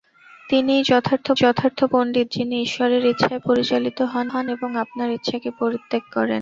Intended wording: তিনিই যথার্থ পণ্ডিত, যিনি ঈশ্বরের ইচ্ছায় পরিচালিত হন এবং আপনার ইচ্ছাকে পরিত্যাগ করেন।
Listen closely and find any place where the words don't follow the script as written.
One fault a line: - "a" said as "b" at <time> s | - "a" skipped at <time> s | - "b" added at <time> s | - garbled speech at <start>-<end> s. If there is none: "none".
- "যথার্থ" added at 1.3 s
- "হন" added at 4.3 s